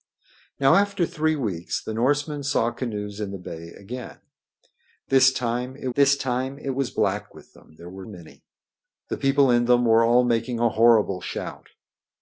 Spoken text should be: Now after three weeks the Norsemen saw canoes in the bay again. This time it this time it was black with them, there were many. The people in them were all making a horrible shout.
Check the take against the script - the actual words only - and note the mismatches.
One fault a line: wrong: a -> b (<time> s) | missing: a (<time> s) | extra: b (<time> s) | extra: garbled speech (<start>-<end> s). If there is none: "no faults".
no faults